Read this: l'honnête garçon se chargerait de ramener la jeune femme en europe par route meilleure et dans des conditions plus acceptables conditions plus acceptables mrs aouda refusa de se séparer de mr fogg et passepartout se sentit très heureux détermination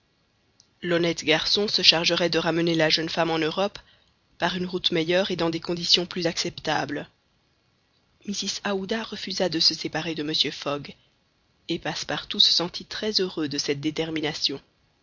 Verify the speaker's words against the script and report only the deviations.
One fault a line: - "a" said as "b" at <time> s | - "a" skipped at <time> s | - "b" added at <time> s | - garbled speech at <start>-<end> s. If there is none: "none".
- "une" added at 4.5 s
- "conditions plus acceptables" skipped at 7.1 s
- "de cette" added at 13.5 s